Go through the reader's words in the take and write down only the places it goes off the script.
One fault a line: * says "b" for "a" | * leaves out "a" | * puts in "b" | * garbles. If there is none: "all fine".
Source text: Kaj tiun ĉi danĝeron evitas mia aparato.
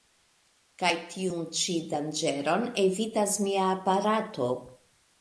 all fine